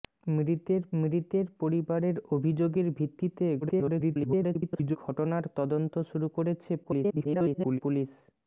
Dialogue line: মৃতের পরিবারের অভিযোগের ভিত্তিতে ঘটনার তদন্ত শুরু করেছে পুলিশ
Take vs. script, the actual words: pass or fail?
fail